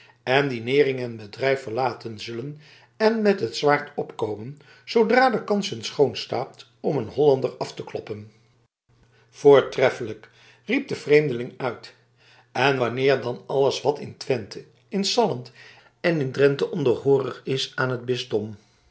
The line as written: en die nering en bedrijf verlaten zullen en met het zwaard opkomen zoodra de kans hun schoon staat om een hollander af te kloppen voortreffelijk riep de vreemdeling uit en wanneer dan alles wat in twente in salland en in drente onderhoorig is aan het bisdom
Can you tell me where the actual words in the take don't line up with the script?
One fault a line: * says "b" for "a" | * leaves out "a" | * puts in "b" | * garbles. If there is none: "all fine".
all fine